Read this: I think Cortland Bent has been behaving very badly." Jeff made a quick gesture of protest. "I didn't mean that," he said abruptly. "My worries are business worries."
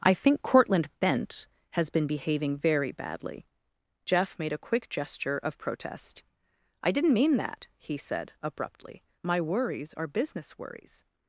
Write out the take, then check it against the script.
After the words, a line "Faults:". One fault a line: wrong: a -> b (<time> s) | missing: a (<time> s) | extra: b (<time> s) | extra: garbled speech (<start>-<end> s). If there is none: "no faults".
I think Cortland Bent has been behaving very badly." Jeff made a quick gesture of protest. "I didn't mean that," he said abruptly. "My worries are business worries."
Faults:
no faults